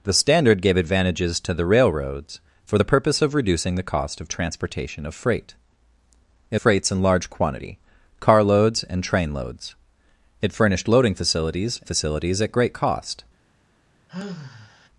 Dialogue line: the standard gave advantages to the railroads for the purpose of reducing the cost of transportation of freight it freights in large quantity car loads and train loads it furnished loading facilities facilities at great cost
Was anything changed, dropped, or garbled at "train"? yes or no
no